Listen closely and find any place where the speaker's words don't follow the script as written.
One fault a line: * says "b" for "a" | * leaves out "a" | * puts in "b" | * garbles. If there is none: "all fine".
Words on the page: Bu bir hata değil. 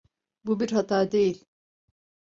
all fine